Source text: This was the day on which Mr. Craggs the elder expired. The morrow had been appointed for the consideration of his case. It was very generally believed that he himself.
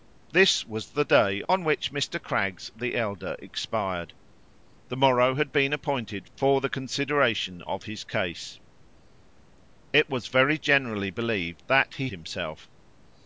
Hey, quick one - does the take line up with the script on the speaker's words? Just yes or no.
yes